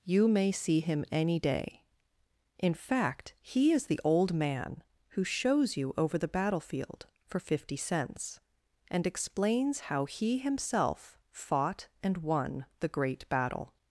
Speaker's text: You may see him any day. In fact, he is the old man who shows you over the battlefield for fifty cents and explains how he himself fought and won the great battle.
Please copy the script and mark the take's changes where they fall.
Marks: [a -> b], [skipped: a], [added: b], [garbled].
You may see him any day. In fact, he is the old man who shows you over the battlefield for fifty cents and explains how he himself fought and won the great battle.